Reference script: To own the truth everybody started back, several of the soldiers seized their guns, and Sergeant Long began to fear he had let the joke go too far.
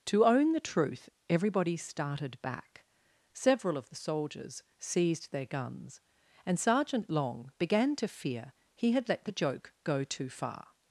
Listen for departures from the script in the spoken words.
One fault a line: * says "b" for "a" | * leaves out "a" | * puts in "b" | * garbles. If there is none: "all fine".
all fine